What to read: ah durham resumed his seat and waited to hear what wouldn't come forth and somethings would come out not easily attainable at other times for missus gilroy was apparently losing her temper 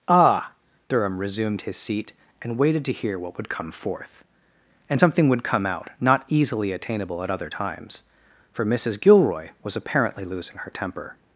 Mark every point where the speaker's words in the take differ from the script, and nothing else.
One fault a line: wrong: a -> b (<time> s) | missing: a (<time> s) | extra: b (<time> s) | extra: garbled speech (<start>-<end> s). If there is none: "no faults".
wrong: wouldn't -> would (3.4 s)
wrong: somethings -> something (5.0 s)